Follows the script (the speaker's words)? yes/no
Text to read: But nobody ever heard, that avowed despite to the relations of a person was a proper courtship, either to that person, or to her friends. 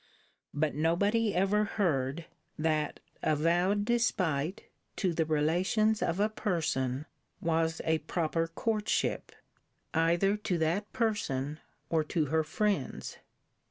yes